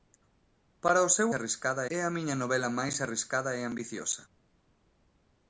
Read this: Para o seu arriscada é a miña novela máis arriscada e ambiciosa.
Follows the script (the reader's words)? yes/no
yes